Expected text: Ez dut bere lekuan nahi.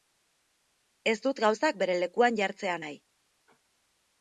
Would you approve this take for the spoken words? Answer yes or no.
no